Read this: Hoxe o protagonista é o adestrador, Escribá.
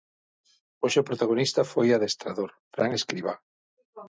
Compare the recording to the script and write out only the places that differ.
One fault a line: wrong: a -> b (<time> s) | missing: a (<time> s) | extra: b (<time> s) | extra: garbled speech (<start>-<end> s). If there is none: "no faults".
wrong: é -> foi (1.7 s)
extra: Fran (2.7 s)